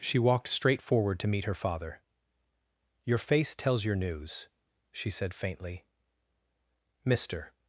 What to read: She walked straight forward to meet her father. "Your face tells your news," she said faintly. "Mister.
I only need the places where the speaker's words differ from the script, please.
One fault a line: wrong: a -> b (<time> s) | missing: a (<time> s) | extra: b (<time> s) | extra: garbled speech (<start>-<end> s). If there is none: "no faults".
no faults